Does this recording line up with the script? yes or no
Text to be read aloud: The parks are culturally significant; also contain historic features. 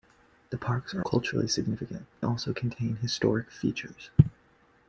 yes